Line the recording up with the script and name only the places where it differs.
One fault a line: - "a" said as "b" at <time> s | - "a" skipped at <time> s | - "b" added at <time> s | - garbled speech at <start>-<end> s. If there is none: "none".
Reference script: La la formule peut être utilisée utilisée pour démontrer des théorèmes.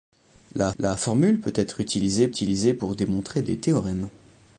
none